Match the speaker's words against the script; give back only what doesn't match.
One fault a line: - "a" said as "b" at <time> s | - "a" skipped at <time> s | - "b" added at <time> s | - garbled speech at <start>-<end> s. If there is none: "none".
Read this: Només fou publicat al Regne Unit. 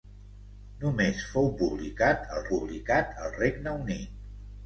- "publicat al" added at 2.5 s